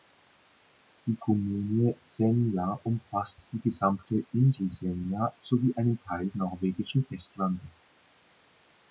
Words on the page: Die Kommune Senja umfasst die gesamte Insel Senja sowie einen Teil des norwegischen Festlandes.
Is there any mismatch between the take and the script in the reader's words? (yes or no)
yes